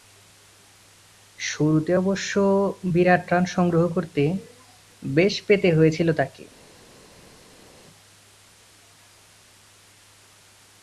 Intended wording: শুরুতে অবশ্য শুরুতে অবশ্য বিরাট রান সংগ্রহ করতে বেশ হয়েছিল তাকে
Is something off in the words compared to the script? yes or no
yes